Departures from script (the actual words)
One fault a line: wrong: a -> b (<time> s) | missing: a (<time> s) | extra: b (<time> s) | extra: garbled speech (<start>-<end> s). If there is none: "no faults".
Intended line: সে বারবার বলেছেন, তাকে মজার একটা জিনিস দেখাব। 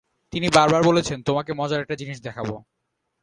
wrong: সে -> তিনি (0.3 s)
wrong: তাকে -> তোমাকে (1.2 s)